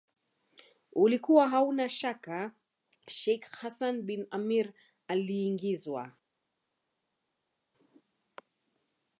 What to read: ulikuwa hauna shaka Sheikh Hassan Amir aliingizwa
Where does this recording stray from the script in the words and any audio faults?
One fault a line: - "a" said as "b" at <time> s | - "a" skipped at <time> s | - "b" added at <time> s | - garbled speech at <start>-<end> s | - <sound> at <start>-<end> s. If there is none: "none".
- "bin" added at 4.0 s